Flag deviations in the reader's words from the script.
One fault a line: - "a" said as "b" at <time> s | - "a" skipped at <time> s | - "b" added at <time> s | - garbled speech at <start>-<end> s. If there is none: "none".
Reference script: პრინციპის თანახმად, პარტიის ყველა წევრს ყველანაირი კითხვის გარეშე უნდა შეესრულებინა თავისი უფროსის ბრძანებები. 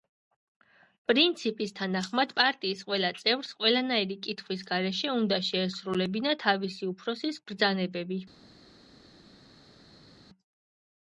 none